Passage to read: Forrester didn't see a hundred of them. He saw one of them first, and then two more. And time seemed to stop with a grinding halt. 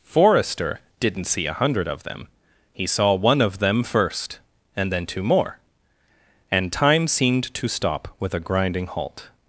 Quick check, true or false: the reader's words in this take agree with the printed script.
true